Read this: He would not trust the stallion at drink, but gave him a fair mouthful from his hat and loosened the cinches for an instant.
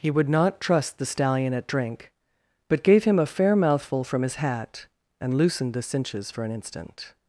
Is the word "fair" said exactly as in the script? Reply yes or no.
yes